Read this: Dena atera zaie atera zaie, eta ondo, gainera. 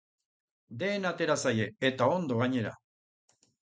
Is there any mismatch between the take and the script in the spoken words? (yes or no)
yes